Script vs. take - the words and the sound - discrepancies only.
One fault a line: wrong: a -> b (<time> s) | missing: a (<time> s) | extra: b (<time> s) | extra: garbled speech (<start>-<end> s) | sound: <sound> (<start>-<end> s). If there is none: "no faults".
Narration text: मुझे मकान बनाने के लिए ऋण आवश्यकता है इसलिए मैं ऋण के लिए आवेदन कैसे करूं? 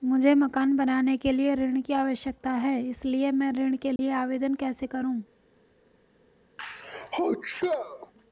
extra: की (1.8 s)
sound: dropout (4.0-4.0 s)
sound: sneeze (6.6-8.1 s)